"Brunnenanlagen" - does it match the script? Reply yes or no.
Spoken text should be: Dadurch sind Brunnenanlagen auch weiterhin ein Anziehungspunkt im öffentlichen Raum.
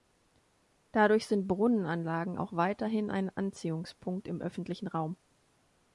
yes